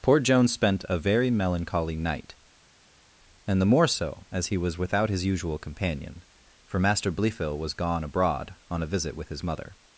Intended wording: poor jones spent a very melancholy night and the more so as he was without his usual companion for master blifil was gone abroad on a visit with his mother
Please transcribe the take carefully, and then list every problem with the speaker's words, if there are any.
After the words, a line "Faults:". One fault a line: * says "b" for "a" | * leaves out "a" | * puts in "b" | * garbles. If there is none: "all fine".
poor jones spent a very melancholy night and the more so as he was without his usual companion for master blifil was gone abroad on a visit with his mother
Faults:
all fine